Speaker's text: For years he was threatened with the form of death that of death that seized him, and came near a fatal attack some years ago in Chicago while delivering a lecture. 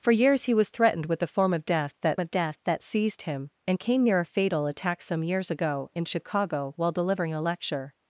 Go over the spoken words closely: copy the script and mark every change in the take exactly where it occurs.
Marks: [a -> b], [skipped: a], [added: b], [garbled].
For years he was threatened with the form of death that of death that seized him, and came near a fatal attack some years ago in Chicago while delivering a lecture.